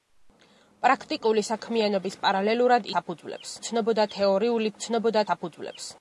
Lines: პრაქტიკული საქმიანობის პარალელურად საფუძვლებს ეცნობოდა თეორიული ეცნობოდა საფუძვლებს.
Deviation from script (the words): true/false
false